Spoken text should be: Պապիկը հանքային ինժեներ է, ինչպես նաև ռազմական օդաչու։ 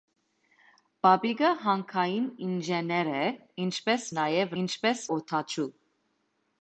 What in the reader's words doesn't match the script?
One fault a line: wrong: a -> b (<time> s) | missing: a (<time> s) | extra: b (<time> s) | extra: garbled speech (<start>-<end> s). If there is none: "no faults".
wrong: ռազմական -> ինչպես (4.6 s)